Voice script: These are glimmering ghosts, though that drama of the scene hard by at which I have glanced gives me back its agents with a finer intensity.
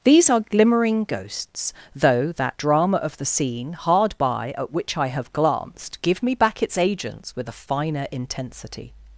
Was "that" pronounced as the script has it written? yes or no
yes